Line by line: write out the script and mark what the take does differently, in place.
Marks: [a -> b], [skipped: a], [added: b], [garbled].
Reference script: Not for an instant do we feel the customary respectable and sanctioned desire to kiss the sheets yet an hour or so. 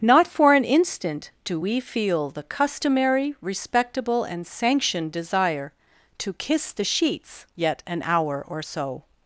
Not for an instant do we feel the customary respectable and sanctioned desire to kiss the sheets yet an hour or so.